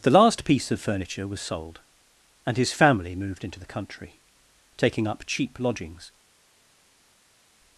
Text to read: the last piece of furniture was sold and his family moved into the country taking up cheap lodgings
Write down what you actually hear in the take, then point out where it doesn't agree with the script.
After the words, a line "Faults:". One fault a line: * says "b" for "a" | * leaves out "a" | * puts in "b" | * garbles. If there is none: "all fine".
the last piece of furniture was sold and his family moved into the country taking up cheap lodgings
Faults:
all fine